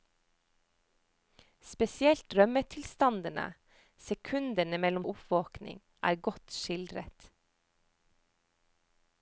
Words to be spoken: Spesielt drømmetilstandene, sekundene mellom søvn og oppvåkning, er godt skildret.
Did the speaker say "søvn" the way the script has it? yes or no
no